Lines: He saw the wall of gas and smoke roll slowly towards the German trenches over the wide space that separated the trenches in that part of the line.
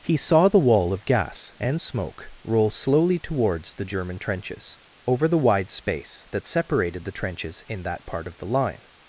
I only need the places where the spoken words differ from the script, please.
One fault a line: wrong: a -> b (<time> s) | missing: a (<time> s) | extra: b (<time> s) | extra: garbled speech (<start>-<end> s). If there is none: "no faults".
no faults